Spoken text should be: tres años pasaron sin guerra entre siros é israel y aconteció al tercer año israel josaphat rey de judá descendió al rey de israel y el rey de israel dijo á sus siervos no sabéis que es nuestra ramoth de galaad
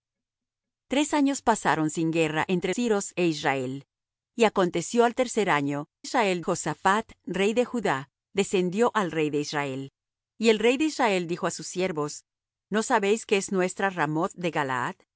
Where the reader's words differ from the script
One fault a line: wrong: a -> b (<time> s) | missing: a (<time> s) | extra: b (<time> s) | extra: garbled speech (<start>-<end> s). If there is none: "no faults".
no faults